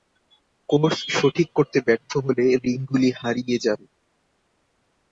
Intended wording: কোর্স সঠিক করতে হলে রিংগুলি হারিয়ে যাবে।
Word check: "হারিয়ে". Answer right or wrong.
right